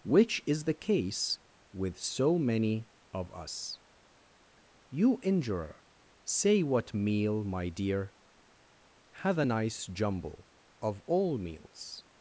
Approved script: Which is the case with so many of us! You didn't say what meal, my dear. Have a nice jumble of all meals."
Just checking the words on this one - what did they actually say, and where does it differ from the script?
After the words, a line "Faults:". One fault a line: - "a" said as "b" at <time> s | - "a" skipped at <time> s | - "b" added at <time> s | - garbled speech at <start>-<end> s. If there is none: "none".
Which is the case with so many of us! You injurer say what meal, my dear. Have a nice jumble of all meals."
Faults:
- "didn't" said as "injurer" at 5.2 s